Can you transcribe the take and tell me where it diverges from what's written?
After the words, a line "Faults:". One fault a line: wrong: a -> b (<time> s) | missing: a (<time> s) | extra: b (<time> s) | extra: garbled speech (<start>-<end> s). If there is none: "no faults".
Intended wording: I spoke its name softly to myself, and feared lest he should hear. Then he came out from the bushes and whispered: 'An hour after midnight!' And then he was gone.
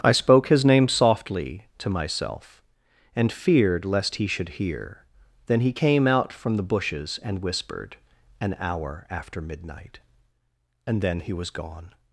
I spoke his name softly to myself, and feared lest he should hear. Then he came out from the bushes and whispered: 'An hour after midnight!' And then he was gone.
Faults:
wrong: its -> his (0.5 s)